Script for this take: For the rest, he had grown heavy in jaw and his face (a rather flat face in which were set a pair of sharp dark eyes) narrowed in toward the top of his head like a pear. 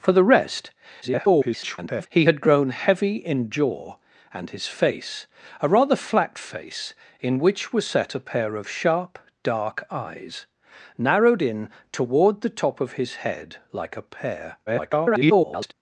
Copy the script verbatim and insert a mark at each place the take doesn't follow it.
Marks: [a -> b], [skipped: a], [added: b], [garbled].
For the rest, [garbled] he had grown heavy in jaw and his face (a rather flat face in which were set a pair of sharp dark eyes) narrowed in toward the top of his head like a pear. [garbled]